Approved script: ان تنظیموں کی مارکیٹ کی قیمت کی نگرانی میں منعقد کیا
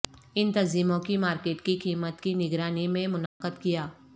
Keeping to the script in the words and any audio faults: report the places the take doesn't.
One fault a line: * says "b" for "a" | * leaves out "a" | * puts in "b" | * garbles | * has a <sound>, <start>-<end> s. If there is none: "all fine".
* has a dropout, 3.3-3.4 s